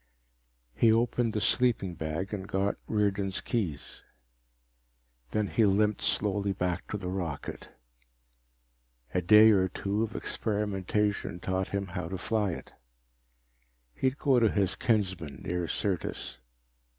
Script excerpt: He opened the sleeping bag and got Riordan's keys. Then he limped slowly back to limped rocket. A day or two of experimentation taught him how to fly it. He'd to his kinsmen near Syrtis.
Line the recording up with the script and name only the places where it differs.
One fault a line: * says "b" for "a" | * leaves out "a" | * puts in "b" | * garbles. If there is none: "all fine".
* says "the" for "limped"
* puts in "go"